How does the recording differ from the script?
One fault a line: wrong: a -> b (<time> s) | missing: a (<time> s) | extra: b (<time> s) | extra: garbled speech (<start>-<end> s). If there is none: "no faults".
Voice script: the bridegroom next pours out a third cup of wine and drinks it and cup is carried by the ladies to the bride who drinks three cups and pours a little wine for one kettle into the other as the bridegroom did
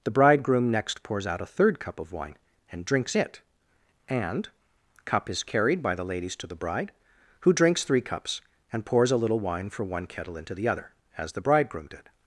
no faults